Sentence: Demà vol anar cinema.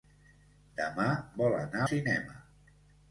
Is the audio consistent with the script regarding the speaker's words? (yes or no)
yes